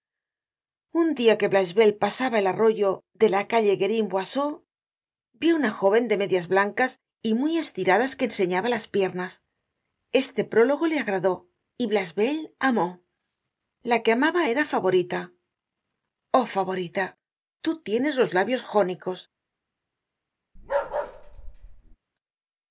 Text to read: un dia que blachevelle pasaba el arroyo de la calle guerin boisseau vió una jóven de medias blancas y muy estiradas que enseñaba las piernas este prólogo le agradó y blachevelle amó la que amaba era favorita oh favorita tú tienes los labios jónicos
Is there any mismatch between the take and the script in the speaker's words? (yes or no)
no